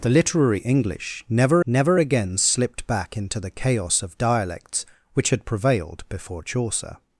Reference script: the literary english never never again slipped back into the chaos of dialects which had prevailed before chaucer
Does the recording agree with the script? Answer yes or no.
yes